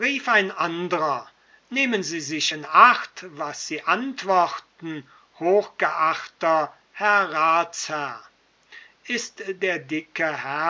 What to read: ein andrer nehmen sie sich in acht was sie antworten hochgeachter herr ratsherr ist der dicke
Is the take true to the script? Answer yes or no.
yes